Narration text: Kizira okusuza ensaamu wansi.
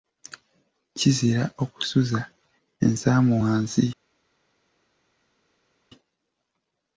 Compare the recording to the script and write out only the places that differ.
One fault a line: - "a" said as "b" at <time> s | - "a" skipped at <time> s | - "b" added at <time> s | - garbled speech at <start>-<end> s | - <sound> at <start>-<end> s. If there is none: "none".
none